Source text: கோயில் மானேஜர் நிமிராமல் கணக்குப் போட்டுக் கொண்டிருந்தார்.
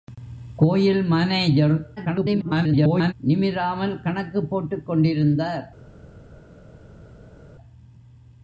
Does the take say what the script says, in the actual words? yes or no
no